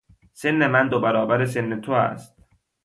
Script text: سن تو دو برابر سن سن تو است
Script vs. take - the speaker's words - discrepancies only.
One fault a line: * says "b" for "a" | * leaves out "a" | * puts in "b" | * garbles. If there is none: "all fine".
* says "من" for "تو"
* leaves out "سن"